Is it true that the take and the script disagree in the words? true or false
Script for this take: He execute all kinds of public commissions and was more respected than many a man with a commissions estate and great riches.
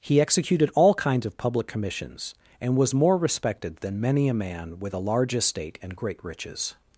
true